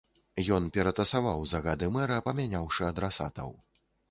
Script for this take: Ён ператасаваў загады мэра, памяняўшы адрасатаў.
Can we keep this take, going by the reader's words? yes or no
yes